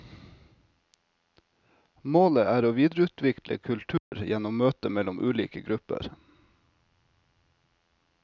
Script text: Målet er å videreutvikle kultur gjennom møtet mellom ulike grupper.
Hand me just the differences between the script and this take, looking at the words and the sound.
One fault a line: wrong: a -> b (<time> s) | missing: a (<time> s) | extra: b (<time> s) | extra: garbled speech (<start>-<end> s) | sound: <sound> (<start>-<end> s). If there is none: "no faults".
sound: dropout (4.0-4.1 s)